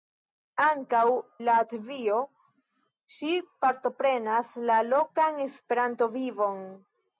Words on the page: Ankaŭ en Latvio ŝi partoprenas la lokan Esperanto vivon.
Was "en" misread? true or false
true